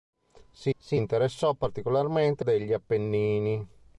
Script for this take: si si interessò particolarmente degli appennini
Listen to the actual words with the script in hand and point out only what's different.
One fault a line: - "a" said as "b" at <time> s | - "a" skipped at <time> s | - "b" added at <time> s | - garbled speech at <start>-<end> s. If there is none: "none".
none